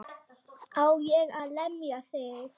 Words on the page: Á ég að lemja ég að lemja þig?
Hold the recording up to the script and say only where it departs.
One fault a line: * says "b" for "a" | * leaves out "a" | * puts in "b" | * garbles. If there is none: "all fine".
* leaves out "ég að lemja"